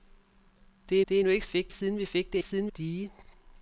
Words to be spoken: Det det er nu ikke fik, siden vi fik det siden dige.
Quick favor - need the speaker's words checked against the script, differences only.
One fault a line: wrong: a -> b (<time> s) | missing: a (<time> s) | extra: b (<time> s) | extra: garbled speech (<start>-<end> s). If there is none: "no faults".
no faults